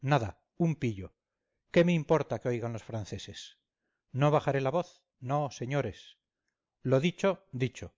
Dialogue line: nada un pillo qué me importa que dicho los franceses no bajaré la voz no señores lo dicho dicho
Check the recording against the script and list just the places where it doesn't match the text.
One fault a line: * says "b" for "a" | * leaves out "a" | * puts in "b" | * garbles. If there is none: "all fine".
* says "oigan" for "dicho"